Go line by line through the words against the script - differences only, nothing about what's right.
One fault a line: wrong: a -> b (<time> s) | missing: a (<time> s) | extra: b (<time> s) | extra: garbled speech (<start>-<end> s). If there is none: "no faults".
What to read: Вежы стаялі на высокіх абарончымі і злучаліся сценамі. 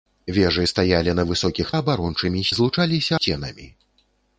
no faults